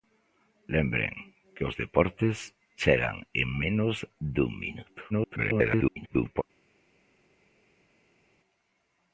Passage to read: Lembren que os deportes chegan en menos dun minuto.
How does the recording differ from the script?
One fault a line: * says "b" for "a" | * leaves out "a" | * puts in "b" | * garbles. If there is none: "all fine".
* garbles